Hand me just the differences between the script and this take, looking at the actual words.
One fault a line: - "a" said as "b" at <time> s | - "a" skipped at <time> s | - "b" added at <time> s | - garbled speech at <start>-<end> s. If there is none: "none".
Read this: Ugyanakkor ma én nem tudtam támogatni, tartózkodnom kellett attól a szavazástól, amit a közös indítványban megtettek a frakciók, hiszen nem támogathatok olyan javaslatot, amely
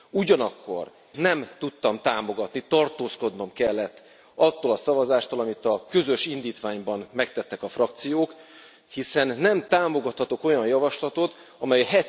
- "ma én" skipped at 0.9 s